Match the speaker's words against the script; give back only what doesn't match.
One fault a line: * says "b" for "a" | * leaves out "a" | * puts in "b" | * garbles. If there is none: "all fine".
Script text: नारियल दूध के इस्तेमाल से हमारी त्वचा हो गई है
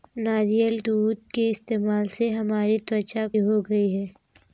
all fine